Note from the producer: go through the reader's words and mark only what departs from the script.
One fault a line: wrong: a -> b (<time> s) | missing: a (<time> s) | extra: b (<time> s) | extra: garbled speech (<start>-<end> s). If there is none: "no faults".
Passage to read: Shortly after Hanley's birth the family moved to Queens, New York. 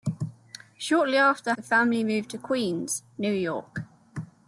missing: Hanley's birth (1.5 s)